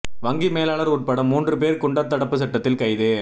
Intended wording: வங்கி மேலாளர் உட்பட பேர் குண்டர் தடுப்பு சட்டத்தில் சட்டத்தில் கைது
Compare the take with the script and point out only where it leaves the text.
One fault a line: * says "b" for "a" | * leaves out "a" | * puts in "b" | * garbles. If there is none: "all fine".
* puts in "மூன்று"
* leaves out "சட்டத்தில்"